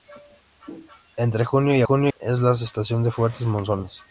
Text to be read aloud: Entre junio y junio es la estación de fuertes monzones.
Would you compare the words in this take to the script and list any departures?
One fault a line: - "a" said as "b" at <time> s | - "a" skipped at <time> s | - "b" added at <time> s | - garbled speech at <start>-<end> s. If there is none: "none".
none